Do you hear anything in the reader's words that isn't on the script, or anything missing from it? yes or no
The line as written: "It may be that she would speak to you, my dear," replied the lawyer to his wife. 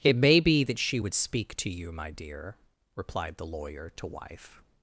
yes